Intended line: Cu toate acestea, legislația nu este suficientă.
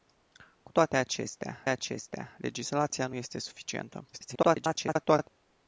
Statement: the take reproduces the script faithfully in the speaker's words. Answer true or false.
false